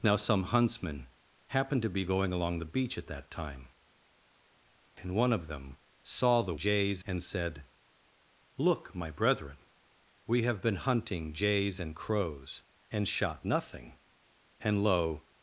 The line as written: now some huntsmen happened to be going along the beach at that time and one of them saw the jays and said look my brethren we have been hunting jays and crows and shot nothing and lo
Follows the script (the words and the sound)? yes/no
yes